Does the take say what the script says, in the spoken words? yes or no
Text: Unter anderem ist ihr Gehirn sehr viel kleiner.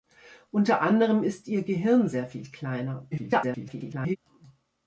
no